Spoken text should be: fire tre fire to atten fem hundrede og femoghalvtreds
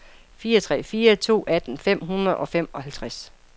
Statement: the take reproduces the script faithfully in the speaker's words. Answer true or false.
true